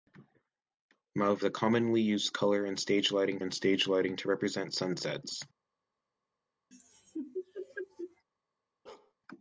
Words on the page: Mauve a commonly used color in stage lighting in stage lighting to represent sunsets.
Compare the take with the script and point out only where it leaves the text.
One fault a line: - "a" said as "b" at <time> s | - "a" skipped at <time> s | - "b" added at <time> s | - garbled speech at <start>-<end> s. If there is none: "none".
none